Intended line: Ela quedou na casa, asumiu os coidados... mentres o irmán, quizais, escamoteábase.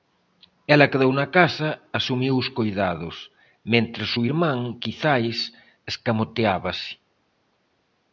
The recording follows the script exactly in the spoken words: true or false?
true